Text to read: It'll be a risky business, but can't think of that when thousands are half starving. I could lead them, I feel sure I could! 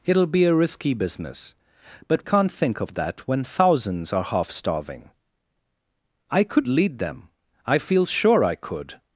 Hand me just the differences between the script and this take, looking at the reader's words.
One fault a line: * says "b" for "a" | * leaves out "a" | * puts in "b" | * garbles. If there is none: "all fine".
all fine